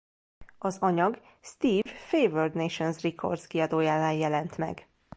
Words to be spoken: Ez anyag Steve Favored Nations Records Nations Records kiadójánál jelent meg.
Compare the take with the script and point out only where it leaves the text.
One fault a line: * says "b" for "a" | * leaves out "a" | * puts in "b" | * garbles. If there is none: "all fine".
* says "Az" for "Ez"
* leaves out "Nations Records"